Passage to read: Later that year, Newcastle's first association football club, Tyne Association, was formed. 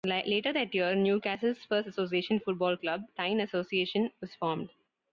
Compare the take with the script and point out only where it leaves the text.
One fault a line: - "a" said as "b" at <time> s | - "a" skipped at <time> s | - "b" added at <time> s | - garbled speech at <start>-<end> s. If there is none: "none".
none